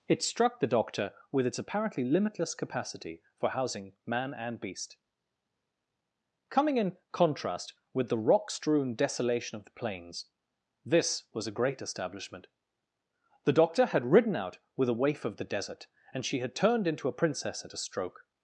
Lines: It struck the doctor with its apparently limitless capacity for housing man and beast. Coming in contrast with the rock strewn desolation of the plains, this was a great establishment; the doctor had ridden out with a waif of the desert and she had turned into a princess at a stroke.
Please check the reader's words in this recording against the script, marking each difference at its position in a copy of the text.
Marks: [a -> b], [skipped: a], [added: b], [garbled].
It struck the doctor with its apparently limitless capacity for housing man and beast. Coming in contrast with the rock strewn desolation of the plains, this was a great establishment; the doctor had ridden out with a waif of the desert and she had turned into a princess at a stroke.